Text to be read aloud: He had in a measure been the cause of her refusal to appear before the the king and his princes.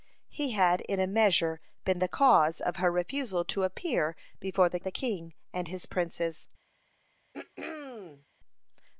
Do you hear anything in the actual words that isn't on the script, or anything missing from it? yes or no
no